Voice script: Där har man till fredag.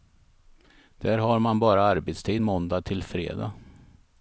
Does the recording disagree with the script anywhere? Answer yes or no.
yes